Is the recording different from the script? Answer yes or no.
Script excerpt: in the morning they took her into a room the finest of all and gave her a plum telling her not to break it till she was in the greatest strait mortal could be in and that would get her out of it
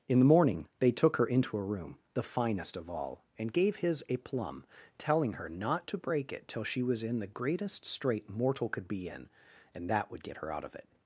yes